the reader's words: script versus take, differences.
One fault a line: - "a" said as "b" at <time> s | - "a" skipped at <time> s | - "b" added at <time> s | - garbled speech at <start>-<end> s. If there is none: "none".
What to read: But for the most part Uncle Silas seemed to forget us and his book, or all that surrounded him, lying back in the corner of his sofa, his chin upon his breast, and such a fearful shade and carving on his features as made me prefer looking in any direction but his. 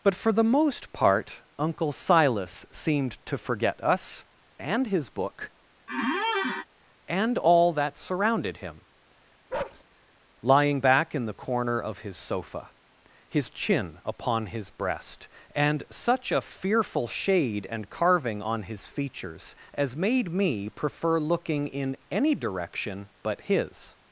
- "or" said as "and" at 7.1 s